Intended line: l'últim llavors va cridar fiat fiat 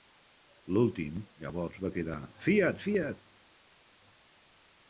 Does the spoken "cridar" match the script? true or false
true